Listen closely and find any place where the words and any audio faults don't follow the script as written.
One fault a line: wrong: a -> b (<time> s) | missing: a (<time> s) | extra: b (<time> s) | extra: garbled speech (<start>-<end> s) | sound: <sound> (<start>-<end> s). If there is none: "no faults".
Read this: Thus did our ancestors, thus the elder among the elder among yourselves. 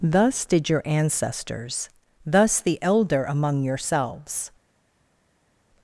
wrong: our -> your (0.7 s)
missing: the elder among (3.6 s)